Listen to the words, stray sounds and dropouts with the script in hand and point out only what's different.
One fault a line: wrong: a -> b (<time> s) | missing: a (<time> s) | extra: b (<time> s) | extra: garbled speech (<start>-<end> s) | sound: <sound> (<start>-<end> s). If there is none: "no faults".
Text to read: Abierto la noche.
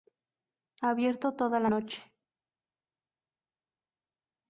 extra: toda (1.4 s)